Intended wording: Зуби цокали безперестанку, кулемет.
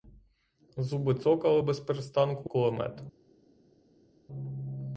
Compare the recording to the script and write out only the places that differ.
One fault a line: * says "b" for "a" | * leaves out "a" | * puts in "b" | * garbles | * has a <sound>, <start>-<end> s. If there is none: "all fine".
all fine